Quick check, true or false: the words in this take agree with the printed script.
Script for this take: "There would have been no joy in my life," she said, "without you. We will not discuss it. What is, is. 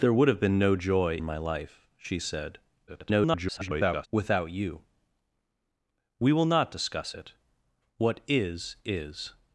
false